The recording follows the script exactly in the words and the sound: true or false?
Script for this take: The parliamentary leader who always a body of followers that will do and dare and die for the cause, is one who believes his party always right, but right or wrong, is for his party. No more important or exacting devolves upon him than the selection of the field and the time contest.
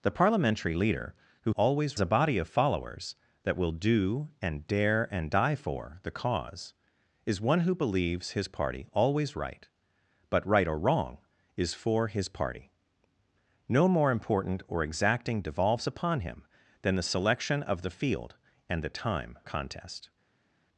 true